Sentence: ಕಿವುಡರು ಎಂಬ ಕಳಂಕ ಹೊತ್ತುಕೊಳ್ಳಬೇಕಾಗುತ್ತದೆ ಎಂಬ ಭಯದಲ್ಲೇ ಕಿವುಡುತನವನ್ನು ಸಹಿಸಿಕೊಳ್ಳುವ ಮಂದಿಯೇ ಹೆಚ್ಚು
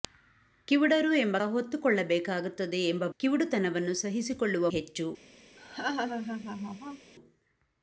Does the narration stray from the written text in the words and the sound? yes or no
yes